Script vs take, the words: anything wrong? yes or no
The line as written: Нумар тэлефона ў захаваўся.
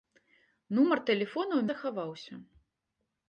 no